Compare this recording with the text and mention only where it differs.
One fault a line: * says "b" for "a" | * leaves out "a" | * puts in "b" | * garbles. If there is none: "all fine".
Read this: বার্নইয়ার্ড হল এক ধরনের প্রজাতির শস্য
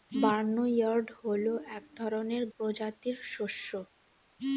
all fine